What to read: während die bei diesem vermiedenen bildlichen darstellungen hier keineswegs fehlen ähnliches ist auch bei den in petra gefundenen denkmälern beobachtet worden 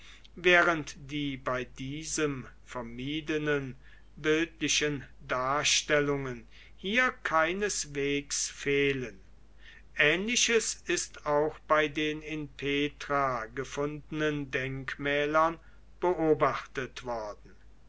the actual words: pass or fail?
pass